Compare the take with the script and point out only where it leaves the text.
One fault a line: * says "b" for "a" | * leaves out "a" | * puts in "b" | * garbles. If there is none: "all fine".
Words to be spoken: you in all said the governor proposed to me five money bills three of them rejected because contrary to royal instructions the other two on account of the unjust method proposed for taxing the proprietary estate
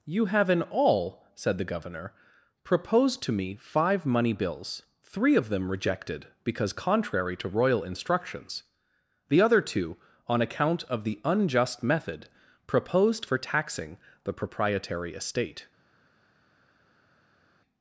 * puts in "have"